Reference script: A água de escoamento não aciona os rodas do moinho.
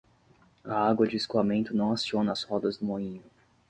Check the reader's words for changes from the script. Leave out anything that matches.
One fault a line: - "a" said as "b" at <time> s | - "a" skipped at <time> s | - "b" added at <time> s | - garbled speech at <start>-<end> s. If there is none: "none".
- "os" said as "as" at 2.3 s